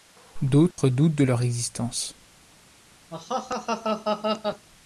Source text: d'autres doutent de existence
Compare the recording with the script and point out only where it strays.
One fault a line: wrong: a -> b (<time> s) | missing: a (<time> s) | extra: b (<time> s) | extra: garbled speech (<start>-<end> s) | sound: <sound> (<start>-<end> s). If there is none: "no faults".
sound: dropout (0.7-0.8 s)
extra: leur (1.2 s)
sound: laugh (3.1-4.7 s)